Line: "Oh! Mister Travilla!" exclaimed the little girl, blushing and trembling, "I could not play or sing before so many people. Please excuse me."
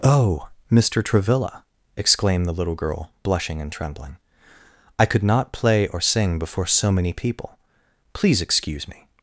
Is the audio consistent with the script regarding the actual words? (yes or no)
yes